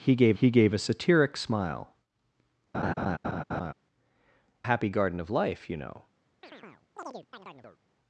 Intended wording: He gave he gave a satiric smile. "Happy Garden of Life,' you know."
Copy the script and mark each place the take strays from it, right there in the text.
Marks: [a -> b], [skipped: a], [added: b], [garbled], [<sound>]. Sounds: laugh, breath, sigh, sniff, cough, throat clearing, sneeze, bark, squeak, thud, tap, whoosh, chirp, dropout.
He gave he gave a satiric smile. [laugh] "Happy Garden of Life,' you know." [chirp]